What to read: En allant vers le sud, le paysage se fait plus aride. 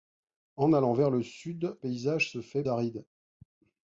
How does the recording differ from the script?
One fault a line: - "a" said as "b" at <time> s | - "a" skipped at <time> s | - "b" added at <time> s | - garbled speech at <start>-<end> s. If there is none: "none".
- "le" skipped at 1.8 s
- "plus" skipped at 2.6 s